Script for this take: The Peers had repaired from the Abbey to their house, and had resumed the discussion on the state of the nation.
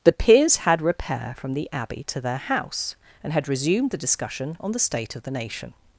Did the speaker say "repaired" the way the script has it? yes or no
no